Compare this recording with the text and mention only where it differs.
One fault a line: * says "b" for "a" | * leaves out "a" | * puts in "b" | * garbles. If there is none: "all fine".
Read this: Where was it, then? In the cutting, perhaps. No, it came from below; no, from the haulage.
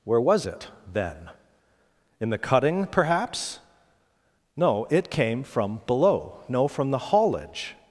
all fine